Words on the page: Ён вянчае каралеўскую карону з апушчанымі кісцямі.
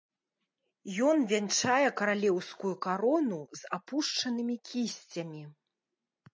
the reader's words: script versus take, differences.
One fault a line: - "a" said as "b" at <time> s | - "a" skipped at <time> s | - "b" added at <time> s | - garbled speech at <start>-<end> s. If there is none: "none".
none